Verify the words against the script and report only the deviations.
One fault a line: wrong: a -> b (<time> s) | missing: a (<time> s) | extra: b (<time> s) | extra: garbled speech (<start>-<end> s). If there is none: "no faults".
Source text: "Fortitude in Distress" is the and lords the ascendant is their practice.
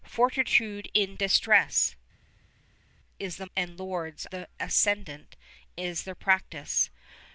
no faults